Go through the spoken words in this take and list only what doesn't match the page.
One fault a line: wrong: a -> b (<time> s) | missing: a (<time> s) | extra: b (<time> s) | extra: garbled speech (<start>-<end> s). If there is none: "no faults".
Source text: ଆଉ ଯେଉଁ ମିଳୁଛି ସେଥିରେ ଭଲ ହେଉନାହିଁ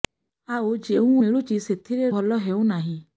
no faults